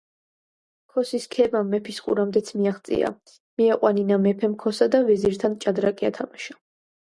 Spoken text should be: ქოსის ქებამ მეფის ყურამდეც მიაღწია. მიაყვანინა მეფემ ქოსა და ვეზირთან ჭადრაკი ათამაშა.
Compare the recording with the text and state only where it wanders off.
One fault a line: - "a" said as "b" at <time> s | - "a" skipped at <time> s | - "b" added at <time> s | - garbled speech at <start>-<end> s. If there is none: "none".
none